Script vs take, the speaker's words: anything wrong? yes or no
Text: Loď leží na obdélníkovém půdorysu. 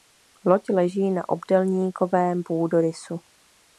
no